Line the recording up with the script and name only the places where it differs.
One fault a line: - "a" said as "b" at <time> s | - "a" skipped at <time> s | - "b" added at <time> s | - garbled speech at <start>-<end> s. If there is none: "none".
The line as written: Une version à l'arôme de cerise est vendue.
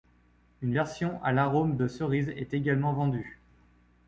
- "également" added at 2.5 s